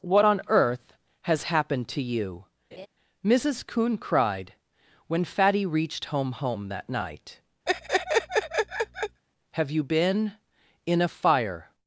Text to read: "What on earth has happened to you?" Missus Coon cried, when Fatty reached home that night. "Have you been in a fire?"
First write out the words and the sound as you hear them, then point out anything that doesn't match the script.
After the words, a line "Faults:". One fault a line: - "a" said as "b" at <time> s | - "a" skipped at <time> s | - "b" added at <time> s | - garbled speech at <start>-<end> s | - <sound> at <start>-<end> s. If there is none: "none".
"What on earth has happened to you?" Missus Coon cried, when Fatty reached home home that night. "Have you been in a fire?"
Faults:
- laugh at 2.7-2.9 s
- "home" added at 6.3 s
- laugh at 7.7-9.2 s